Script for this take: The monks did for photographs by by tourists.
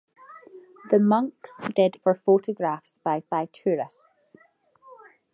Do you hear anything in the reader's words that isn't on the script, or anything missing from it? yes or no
no